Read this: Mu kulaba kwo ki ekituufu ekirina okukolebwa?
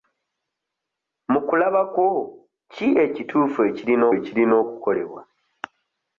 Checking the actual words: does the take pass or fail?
fail